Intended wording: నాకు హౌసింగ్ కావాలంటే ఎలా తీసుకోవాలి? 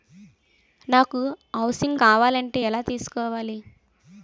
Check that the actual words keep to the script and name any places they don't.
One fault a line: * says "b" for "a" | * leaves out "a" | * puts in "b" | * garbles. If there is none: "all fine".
all fine